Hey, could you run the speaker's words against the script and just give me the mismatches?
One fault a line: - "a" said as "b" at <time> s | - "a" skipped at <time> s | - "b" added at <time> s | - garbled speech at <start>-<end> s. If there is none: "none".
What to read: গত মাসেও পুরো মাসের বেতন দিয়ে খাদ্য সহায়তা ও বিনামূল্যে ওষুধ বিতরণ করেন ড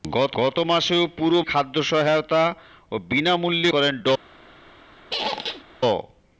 - "গত" added at 0.4 s
- "মাসের বেতন দিয়ে" skipped at 1.4 s
- "ওষুধ বিতরণ" skipped at 3.7 s